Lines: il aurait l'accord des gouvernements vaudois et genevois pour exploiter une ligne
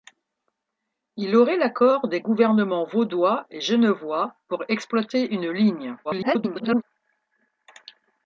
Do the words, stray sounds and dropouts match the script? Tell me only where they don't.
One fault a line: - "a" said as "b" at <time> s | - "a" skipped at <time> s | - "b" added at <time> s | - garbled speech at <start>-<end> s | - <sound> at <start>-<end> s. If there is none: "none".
- garbled speech at 6.0-6.8 s